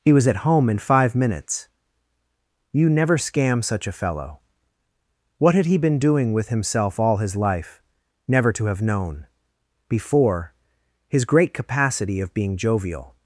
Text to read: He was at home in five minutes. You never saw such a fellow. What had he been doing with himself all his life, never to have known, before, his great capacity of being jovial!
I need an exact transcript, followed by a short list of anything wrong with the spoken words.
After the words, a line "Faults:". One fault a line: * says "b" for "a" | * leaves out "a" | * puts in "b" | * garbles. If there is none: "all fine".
He was at home in five minutes. You never scam such a fellow. What had he been doing with himself all his life, never to have known, before, his great capacity of being jovial!
Faults:
* says "scam" for "saw"